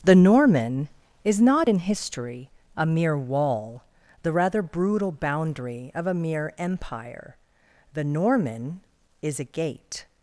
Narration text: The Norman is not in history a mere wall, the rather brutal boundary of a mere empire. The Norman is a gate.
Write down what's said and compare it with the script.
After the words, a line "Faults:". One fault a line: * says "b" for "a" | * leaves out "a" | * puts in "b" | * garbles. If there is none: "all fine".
The Norman is not in history a mere wall, the rather brutal boundary of a mere empire. The Norman is a gate.
Faults:
all fine